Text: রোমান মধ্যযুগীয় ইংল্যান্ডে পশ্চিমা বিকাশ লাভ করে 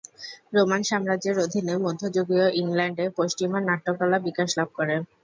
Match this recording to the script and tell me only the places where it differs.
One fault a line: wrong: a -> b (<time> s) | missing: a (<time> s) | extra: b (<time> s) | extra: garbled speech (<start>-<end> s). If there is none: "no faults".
extra: সাম্রাজ্যের অধীনে (0.8 s)
extra: নাট্যকলা (3.6 s)